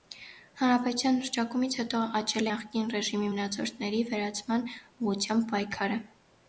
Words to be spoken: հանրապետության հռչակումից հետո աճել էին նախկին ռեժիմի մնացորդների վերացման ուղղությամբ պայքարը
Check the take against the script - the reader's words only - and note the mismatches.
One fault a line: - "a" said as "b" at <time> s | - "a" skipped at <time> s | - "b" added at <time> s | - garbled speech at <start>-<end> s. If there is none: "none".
- "էին" skipped at 2.5 s